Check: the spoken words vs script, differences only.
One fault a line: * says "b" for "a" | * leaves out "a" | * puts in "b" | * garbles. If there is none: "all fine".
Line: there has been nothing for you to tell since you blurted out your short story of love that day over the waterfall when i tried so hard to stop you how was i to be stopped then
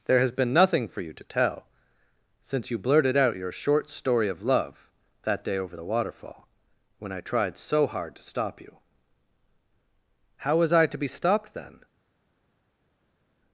all fine